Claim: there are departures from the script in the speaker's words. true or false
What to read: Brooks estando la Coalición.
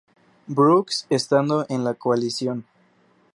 true